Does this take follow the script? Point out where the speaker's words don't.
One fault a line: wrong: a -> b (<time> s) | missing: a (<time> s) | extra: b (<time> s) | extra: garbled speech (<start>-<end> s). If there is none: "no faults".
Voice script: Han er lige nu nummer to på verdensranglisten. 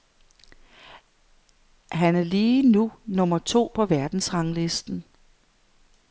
no faults